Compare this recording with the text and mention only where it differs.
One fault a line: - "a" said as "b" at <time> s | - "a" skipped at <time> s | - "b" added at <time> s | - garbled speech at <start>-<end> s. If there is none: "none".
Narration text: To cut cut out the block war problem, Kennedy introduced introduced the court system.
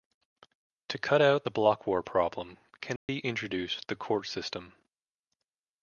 - "cut" skipped at 1.2 s
- "introduced" skipped at 3.9 s